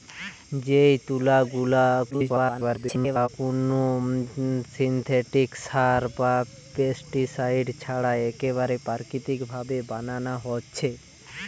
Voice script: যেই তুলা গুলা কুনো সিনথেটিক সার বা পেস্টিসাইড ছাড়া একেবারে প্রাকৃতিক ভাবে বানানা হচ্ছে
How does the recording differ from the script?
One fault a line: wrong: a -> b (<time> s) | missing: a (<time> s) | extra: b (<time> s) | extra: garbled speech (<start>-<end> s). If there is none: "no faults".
extra: garbled speech (2.1-3.3 s)